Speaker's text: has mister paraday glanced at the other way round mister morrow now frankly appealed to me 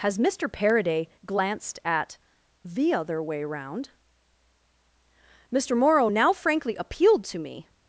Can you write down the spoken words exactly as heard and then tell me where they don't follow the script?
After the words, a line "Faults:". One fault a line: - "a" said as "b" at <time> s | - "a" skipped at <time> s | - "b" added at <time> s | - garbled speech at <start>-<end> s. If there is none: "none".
has mister paraday glanced at the other way round mister morrow now frankly appealed to me
Faults:
none